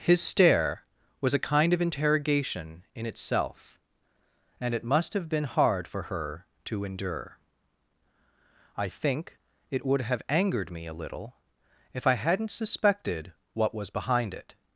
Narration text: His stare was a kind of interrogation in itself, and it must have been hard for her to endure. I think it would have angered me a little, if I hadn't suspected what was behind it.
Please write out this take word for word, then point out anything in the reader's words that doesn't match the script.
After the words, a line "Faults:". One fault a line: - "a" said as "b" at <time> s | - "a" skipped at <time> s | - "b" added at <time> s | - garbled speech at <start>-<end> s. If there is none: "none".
His stare was a kind of interrogation in itself, and it must have been hard for her to endure. I think it would have angered me a little, if I hadn't suspected what was behind it.
Faults:
none